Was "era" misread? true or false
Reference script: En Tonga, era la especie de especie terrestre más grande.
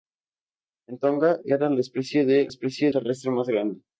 false